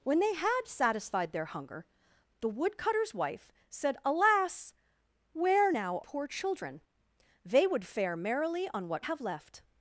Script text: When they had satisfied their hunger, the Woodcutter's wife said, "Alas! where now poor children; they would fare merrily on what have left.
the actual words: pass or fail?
pass